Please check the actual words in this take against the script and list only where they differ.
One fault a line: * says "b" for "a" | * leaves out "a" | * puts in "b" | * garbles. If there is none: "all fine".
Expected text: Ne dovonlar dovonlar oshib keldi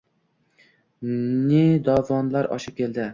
* leaves out "dovonlar"